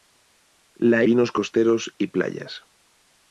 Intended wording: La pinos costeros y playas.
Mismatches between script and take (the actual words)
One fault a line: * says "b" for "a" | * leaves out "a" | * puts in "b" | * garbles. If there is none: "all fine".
all fine